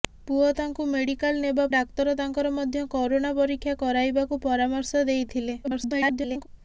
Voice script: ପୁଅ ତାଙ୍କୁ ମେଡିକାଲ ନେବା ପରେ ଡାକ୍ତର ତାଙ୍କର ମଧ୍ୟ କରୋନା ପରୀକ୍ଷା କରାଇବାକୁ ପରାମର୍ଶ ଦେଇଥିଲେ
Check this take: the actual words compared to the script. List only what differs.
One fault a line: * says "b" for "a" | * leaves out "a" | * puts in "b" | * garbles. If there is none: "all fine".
* leaves out "ପରେ"
* garbles